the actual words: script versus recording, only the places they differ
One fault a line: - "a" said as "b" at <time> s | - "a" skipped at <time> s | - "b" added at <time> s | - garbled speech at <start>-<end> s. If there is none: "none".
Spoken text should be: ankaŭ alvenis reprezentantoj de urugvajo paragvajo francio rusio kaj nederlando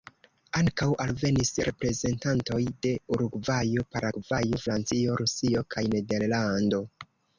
none